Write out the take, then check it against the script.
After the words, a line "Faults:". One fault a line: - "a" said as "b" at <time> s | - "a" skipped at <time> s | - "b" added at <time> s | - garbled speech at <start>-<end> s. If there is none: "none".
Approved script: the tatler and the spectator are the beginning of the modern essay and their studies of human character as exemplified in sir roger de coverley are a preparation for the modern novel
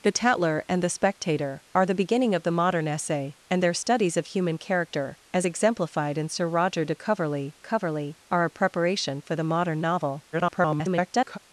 the tatler and the spectator are the beginning of the modern essay and their studies of human character as exemplified in sir roger de coverley coverley are a preparation for the modern novel [garbled]
Faults:
- "coverley" added at 7.6 s
- garbled speech at 10.3-11.4 s